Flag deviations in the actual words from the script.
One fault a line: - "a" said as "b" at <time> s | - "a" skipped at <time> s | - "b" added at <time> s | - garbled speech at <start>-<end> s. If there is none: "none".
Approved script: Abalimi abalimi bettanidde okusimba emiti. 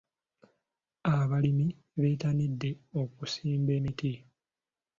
- "abalimi" skipped at 1.7 s